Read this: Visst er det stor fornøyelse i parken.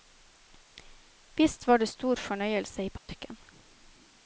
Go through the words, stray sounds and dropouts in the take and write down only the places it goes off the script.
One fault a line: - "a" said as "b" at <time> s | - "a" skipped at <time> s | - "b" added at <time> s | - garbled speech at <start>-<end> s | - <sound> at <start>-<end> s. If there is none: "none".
- "er" said as "var" at 1.7 s
- dropout at 3.0-3.1 s